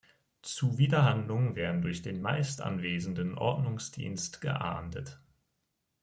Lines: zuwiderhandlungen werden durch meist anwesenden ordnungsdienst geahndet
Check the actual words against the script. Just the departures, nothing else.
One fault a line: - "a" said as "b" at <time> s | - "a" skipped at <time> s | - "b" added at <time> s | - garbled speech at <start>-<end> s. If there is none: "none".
- "den" added at 2.0 s